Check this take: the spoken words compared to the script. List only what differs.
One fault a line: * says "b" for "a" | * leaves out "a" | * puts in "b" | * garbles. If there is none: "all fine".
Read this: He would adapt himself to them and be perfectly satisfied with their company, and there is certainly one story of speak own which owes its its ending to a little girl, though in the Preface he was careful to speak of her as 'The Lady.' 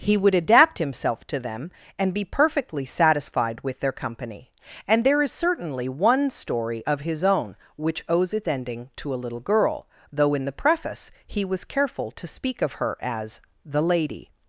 * says "his" for "speak"
* leaves out "its"